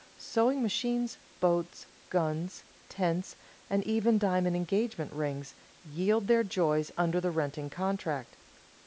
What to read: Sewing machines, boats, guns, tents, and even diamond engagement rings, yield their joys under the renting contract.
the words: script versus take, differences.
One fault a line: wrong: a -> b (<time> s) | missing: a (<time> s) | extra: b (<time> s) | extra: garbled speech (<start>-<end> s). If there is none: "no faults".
no faults